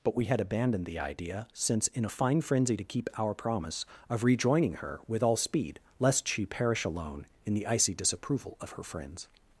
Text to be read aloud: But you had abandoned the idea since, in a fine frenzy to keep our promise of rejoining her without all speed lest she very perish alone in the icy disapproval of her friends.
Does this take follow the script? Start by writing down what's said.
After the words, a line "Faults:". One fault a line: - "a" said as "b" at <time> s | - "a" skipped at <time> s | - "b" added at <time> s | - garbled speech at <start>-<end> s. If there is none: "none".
But we had abandoned the idea since, in a fine frenzy to keep our promise of rejoining her with all speed lest she perish alone in the icy disapproval of her friends.
Faults:
- "you" said as "we" at 0.1 s
- "without" said as "with" at 5.1 s
- "very" skipped at 6.5 s